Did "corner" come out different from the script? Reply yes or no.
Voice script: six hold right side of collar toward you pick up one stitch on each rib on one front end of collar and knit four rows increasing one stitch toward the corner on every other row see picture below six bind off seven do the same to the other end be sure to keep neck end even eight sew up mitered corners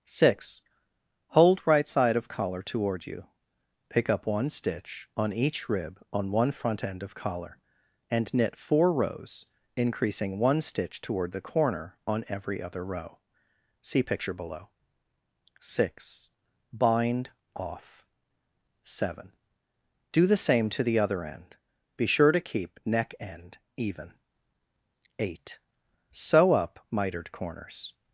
no